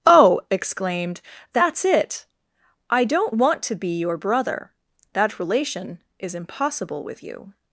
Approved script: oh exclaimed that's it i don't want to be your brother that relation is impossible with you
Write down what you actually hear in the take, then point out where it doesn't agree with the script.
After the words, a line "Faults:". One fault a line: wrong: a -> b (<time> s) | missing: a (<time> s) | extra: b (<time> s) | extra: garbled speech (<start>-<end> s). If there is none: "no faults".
oh exclaimed that's it i don't want to be your brother that relation is impossible with you
Faults:
no faults